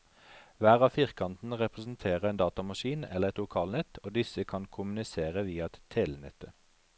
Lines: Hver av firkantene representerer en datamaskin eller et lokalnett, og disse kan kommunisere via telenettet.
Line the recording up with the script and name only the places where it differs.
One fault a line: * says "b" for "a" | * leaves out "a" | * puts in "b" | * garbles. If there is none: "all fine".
all fine